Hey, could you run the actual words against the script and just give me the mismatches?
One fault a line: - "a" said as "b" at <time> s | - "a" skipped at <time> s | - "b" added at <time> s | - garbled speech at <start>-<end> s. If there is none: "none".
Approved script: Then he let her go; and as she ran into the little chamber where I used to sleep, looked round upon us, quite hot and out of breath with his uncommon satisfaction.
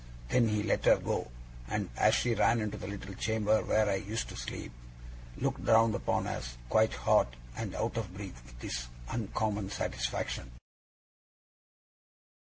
none